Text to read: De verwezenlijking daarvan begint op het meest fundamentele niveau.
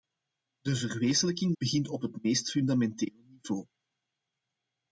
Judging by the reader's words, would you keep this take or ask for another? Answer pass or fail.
fail